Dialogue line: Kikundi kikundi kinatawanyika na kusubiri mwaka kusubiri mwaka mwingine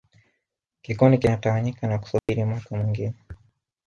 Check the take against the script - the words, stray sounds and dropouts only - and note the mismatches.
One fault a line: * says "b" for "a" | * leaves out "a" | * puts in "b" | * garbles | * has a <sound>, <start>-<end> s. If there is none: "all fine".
* leaves out "kikundi"
* has a dropout, 2.2-2.3 s
* leaves out "kusubiri mwaka"